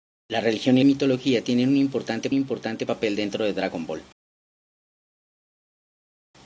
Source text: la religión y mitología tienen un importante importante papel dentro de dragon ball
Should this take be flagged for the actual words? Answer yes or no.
no